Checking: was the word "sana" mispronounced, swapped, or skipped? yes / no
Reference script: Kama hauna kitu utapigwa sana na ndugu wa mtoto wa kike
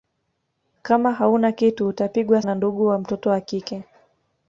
yes